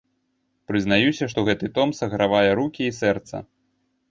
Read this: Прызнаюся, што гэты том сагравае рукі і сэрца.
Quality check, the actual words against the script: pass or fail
pass